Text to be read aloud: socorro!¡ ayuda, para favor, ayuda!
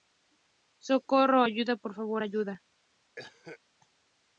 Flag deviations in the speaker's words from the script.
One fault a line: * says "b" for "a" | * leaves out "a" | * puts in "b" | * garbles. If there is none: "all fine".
* says "por" for "para"